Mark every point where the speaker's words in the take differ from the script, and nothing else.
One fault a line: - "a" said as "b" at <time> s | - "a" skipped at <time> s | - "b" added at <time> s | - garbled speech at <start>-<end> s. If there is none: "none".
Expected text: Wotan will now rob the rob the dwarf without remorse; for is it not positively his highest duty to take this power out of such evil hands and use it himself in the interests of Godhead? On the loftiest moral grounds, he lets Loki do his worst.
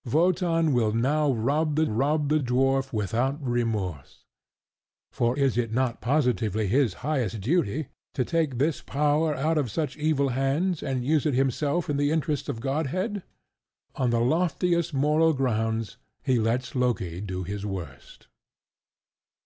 none